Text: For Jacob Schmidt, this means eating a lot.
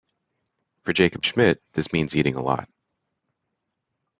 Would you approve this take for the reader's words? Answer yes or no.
yes